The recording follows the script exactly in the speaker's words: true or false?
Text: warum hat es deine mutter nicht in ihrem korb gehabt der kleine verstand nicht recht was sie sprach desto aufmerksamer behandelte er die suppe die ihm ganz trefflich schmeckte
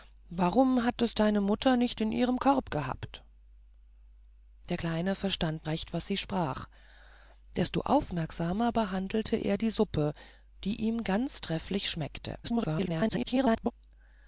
false